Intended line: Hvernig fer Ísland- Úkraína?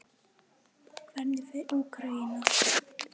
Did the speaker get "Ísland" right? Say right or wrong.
wrong